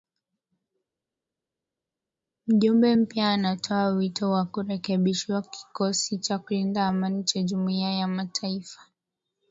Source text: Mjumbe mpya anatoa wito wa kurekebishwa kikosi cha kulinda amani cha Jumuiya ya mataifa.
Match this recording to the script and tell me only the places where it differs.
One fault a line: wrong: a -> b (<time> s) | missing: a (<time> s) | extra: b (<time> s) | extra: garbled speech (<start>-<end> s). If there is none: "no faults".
no faults